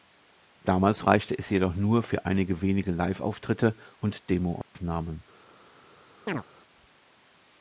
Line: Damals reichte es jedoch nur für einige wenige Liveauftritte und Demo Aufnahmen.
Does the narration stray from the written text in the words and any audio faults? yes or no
yes